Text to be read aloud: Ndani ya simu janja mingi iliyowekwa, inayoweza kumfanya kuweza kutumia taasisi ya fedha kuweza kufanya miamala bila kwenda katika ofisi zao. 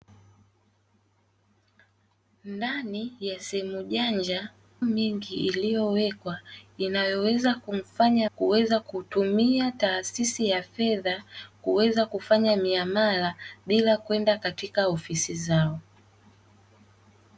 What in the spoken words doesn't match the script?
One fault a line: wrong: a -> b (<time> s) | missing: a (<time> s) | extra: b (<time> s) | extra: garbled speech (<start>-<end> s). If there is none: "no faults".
no faults